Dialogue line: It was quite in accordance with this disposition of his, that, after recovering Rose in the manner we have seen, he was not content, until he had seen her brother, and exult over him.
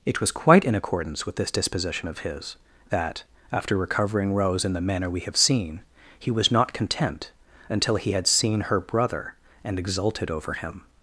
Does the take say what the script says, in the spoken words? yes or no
no